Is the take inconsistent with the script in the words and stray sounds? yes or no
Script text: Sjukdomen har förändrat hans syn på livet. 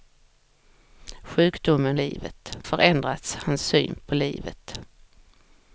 yes